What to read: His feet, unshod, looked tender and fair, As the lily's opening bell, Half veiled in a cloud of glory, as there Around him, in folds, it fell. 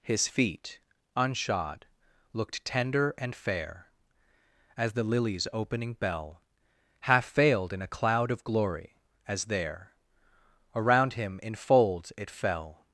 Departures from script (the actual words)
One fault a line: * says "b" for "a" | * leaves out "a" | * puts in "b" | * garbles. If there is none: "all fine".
all fine